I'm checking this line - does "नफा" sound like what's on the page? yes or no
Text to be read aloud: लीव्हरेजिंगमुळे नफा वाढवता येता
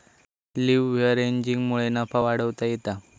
yes